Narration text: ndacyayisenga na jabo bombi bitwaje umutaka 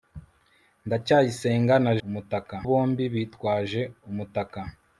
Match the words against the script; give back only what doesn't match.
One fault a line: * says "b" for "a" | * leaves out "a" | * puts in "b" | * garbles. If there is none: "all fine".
* says "umutaka" for "jabo"